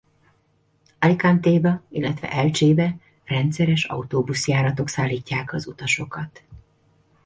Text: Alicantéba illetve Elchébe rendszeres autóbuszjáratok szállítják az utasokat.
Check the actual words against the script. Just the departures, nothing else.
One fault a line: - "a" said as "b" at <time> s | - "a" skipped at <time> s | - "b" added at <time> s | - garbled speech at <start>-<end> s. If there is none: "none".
none